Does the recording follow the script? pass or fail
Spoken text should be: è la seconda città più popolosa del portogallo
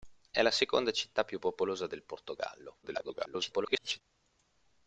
fail